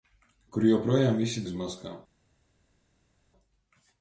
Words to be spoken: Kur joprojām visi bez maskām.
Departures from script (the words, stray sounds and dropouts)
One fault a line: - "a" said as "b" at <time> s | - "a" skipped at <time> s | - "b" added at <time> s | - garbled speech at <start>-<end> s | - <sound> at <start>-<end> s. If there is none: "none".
none